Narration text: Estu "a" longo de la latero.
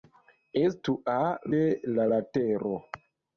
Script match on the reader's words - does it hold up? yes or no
no